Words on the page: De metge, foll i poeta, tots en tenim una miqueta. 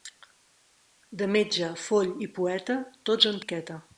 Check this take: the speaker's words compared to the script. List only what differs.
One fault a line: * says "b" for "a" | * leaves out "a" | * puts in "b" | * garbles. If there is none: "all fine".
* leaves out "tenim una"